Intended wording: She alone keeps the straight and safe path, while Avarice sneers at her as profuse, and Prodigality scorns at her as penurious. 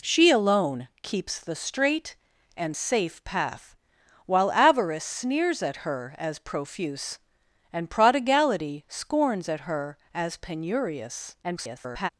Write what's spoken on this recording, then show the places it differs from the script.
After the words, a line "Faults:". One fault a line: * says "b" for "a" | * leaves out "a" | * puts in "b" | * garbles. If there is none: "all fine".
She alone keeps the straight and safe path, while Avarice sneers at her as profuse, and Prodigality scorns at her as penurious. [garbled]
Faults:
* garbles